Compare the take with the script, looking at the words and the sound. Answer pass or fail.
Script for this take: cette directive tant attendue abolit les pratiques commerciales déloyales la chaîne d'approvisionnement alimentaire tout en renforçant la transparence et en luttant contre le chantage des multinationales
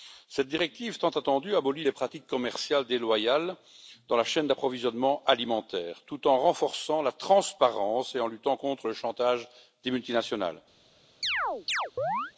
fail